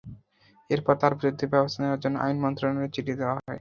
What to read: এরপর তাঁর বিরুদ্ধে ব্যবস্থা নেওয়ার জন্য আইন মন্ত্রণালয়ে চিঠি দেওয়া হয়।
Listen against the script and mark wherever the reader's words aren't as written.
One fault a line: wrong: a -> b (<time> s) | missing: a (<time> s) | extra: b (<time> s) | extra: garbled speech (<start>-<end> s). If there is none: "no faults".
no faults